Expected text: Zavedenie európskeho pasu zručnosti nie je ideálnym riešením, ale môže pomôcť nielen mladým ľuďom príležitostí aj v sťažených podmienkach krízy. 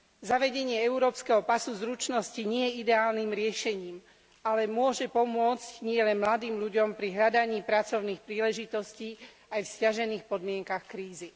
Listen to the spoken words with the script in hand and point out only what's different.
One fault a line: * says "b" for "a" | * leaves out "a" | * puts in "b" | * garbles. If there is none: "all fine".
* puts in "pri hľadaní pracovných"